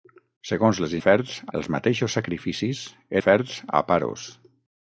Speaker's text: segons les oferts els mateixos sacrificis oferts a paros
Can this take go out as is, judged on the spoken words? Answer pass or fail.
pass